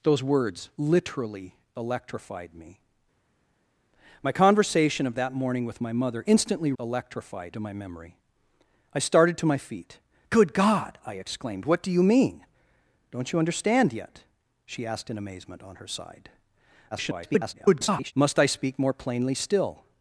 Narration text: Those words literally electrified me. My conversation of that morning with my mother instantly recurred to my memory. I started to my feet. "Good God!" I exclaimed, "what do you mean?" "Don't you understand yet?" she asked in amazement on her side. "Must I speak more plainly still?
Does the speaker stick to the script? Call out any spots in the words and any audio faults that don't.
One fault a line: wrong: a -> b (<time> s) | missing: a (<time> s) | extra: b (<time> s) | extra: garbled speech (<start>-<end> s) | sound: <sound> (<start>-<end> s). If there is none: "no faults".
wrong: recurred -> electrified (6.8 s)
extra: garbled speech (16.9-18.1 s)